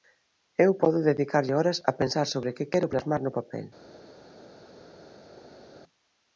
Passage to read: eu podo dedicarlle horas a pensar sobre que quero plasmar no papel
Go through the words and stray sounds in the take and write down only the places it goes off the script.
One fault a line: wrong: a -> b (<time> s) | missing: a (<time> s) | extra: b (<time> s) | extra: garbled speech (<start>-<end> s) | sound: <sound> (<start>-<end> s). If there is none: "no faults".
no faults